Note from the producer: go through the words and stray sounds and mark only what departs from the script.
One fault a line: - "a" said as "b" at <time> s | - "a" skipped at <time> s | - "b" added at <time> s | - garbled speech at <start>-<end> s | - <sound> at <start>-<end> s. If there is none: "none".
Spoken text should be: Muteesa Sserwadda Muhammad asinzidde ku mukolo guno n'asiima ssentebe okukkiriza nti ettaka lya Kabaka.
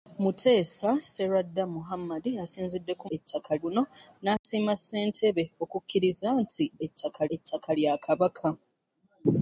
- "mukolo" said as "ettaka" at 3.2 s
- dropout at 4.4-4.4 s
- "ettaka" added at 7.4 s